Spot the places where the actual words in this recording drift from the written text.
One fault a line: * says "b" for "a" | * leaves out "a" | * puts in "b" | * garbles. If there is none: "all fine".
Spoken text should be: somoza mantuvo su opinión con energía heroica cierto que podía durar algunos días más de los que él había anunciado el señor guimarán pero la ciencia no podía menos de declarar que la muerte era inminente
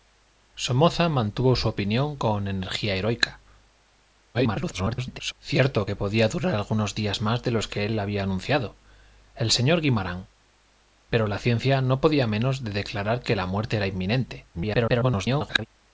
* garbles
* garbles